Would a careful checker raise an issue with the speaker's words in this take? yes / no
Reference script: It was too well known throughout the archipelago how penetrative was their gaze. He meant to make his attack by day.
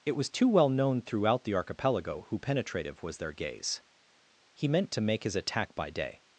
yes